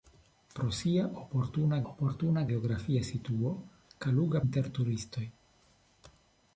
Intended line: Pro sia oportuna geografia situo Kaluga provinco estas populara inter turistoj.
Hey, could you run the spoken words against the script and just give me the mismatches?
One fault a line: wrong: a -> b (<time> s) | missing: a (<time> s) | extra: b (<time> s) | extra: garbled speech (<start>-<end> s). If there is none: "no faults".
extra: oportuna (1.9 s)
missing: provinco estas populara (4.4 s)